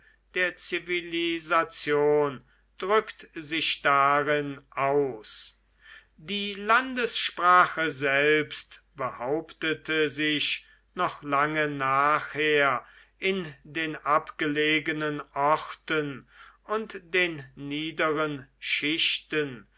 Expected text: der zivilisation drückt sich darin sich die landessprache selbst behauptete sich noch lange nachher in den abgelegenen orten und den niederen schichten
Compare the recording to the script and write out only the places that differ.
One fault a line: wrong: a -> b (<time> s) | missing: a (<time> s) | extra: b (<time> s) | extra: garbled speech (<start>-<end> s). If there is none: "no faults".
wrong: sich -> aus (4.7 s)